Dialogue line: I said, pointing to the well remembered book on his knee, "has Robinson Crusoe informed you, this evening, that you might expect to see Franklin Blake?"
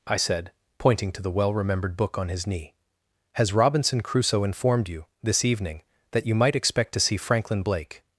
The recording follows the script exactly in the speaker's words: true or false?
true